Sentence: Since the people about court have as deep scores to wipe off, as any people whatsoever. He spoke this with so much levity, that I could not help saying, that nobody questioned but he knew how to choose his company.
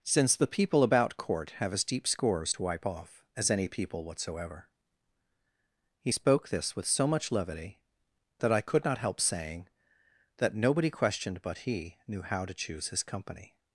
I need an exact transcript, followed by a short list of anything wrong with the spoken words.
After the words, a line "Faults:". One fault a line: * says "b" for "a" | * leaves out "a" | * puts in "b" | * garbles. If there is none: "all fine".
Since the people about court have as deep scores to wipe off, as any people whatsoever. He spoke this with so much levity, that I could not help saying, that nobody questioned but he knew how to choose his company.
Faults:
all fine